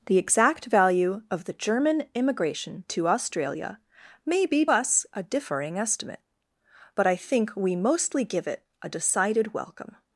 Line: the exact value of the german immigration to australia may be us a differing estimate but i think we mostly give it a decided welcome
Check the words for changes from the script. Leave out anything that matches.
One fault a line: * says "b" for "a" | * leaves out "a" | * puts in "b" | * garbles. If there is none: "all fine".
all fine